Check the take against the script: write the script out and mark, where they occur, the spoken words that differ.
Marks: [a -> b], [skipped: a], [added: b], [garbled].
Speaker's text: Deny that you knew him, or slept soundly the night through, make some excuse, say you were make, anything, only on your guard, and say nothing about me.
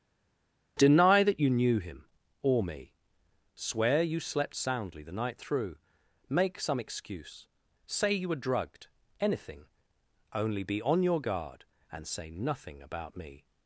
Deny that you knew him, or [added: me Swear you] slept soundly the night through, make some excuse, say you were [make, -> drugged] anything, only [added: be] on your guard, and say nothing about me.